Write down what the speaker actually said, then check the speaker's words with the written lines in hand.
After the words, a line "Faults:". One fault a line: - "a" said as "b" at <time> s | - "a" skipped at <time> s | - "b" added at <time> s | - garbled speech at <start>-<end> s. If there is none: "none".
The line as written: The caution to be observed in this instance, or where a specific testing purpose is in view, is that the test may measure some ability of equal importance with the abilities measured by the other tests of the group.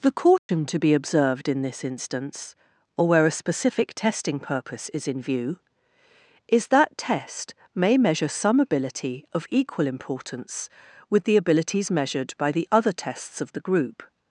The caution to be observed in this instance, or where a specific testing purpose is in view, is that test may measure some ability of equal importance with the abilities measured by the other tests of the group.
Faults:
- "the" skipped at 7.0 s